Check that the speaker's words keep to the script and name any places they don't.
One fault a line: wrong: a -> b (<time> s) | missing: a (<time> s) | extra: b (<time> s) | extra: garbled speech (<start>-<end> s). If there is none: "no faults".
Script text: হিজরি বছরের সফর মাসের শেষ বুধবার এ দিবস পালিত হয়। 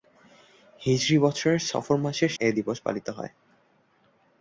missing: শেষ বুধবার (2.3 s)